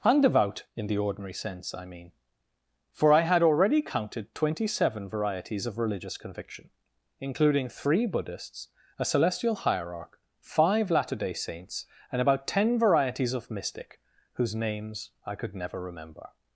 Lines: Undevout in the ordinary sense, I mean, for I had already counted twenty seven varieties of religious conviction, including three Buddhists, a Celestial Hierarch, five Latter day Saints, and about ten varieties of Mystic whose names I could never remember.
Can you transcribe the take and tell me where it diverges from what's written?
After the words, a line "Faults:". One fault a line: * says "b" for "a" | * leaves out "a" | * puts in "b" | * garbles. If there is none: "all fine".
Undevout in the ordinary sense, I mean, for I had already counted twenty seven varieties of religious conviction, including three Buddhists, a Celestial Hierarch, five Latter day Saints, and about ten varieties of Mystic whose names I could never remember.
Faults:
all fine